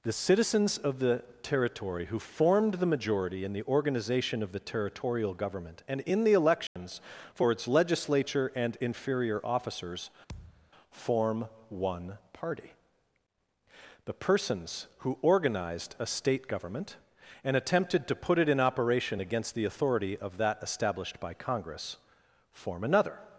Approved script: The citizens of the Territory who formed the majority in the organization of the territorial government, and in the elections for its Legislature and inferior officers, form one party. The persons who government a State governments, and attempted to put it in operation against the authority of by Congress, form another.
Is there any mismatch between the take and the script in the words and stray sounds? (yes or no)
yes